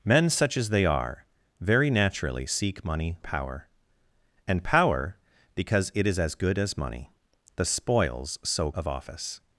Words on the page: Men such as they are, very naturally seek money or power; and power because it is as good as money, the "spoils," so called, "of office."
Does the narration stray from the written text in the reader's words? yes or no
yes